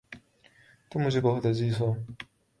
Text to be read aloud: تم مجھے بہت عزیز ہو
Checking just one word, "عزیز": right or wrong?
right